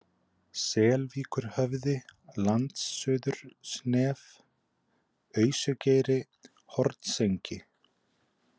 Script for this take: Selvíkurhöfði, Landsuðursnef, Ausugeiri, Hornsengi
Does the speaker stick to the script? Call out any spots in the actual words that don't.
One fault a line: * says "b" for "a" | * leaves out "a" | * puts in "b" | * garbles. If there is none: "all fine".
all fine